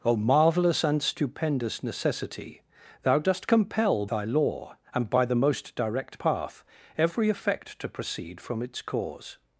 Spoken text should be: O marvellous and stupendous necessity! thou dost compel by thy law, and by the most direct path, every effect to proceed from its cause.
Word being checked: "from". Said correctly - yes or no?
yes